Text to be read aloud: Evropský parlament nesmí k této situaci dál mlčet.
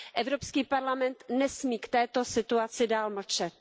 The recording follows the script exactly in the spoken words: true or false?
true